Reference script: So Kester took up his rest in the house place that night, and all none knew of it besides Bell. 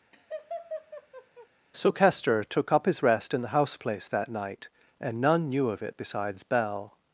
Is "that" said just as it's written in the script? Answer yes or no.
yes